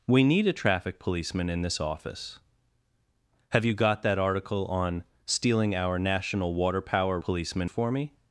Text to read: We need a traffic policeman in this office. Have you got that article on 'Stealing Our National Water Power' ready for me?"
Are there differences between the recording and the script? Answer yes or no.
yes